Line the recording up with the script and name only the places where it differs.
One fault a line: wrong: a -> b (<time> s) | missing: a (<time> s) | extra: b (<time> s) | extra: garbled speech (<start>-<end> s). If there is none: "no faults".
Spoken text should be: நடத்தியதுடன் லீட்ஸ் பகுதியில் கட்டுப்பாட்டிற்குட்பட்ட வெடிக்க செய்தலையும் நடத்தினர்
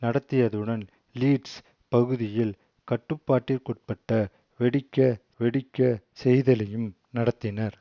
extra: வெடிக்க (5.4 s)